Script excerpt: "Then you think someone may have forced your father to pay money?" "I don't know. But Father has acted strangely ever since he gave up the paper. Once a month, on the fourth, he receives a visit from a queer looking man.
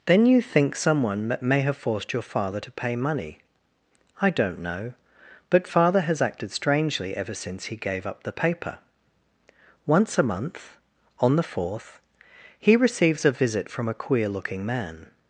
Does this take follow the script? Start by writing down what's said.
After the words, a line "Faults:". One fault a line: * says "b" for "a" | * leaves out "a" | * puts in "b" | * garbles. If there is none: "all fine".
"Then you think someone may have forced your father to pay money?" "I don't know. But Father has acted strangely ever since he gave up the paper. Once a month, on the fourth, he receives a visit from a queer looking man.
Faults:
all fine